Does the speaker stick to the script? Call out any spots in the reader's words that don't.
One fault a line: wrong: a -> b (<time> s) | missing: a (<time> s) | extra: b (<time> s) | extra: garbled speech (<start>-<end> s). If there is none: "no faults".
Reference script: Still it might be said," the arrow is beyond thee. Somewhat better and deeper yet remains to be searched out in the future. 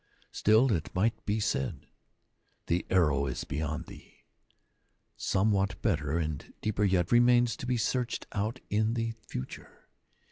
no faults